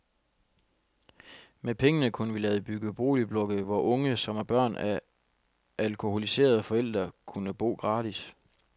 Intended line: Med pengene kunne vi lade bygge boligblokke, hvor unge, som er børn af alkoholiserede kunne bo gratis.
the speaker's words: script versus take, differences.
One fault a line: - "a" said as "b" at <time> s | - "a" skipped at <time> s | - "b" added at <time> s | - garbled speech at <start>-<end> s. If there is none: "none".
- "forældre" added at 6.6 s